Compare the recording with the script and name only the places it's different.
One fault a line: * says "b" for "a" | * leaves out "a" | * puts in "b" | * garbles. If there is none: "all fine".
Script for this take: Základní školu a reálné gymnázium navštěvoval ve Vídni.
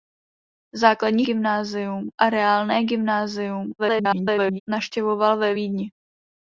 * says "gymnázium" for "školu"
* garbles